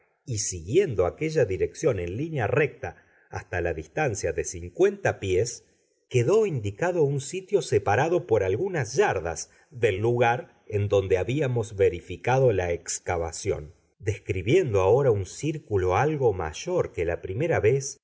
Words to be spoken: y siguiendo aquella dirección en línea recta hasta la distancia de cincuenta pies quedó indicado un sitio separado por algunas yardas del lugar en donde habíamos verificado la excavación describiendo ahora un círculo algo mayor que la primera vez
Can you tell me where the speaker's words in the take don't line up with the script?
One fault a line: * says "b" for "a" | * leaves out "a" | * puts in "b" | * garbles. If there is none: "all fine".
all fine